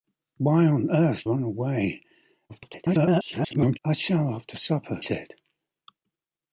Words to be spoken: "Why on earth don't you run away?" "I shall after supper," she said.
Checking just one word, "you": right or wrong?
wrong